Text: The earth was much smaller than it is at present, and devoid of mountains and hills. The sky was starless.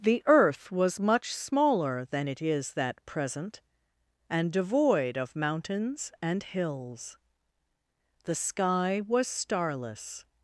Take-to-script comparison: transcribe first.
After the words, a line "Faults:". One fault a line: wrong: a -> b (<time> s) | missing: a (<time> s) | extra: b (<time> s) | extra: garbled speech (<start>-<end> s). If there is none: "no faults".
The earth was much smaller than it is that present, and devoid of mountains and hills. The sky was starless.
Faults:
wrong: at -> that (2.7 s)